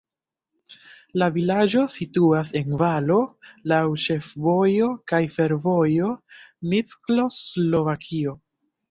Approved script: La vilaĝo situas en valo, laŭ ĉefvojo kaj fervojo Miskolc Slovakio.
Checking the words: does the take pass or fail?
pass